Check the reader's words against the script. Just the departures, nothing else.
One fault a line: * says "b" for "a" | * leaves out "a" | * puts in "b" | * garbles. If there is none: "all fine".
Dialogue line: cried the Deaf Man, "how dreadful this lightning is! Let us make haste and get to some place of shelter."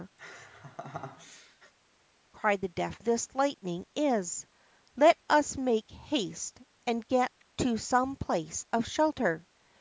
* leaves out "Man how dreadful"